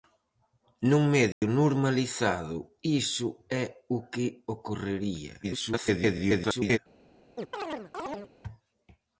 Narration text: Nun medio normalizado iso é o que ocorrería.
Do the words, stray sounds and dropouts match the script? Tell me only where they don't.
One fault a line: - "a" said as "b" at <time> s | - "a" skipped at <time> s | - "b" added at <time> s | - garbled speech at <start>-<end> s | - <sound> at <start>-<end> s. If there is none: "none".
- dropout at 1.3-1.4 s
- garbled speech at 5.4-6.8 s
- chirp at 7.3-8.3 s